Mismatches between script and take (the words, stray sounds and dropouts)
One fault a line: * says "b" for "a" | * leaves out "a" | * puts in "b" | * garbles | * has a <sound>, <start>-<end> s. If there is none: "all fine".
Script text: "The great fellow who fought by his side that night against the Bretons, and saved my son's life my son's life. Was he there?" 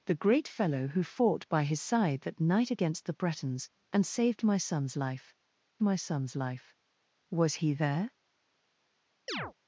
* has a chirp, 9.3-9.5 s